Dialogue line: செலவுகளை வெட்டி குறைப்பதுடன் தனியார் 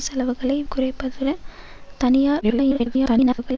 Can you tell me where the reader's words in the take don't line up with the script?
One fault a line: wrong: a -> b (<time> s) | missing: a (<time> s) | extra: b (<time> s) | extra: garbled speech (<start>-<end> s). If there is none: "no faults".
missing: வெட்டி (0.6 s)
extra: garbled speech (2.4-3.6 s)